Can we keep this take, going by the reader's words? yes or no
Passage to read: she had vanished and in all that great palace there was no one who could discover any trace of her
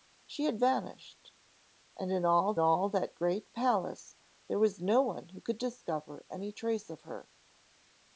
no